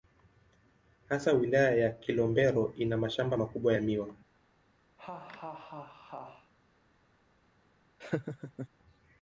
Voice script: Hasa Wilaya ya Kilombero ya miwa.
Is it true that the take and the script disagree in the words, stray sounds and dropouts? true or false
true